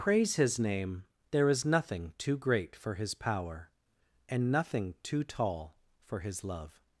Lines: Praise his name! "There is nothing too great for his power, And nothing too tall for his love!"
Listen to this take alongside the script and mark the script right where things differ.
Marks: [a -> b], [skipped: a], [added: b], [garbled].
Praise his name! "There is nothing too great for his power, And nothing too tall for his love!"